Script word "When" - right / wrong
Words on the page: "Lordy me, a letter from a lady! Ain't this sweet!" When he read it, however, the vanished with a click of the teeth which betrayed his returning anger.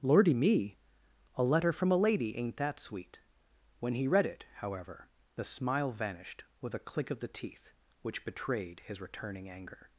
right